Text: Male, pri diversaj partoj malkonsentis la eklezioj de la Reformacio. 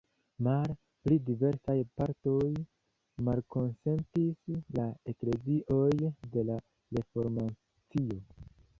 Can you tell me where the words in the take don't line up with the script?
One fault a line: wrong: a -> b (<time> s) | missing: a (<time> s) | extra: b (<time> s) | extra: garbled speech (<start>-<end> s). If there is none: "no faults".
no faults